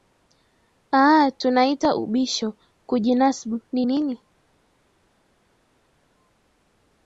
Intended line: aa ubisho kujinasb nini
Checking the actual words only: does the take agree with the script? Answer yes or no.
no